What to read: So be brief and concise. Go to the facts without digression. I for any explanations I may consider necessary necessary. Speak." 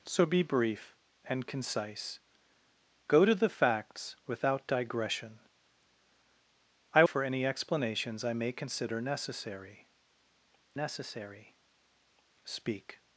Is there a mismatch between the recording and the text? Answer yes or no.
no